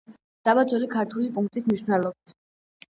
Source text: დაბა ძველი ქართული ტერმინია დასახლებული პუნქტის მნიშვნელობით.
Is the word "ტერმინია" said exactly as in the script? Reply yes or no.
no